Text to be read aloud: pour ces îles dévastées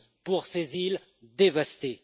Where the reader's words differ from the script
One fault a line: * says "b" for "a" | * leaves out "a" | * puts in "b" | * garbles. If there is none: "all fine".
all fine